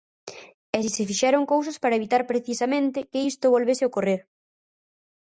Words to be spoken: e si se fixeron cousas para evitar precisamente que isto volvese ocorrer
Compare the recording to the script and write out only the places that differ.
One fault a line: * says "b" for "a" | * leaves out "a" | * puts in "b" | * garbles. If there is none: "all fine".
all fine